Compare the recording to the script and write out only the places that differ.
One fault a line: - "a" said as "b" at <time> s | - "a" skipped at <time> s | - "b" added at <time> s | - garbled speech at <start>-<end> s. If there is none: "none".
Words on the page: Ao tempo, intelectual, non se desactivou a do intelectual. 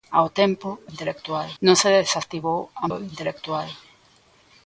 none